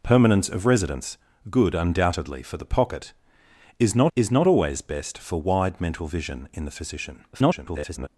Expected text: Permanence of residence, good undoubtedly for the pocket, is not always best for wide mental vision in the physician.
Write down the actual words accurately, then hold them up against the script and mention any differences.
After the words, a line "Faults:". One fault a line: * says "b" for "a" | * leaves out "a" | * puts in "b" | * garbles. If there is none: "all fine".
Permanence of residence, good undoubtedly for the pocket, is not is not always best for wide mental vision in the physician. [garbled]
Faults:
* puts in "is not"
* garbles